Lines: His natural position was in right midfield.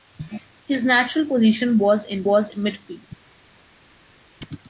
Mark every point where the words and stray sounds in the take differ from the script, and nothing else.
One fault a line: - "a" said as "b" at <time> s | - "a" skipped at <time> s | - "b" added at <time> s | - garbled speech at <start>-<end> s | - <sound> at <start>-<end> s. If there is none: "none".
- "right" said as "was" at 2.2 s